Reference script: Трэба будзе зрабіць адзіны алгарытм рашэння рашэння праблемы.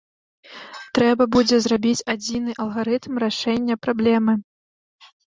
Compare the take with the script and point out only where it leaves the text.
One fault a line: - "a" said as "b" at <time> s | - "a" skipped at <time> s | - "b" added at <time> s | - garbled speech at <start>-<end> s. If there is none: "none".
- "рашэння" skipped at 3.8 s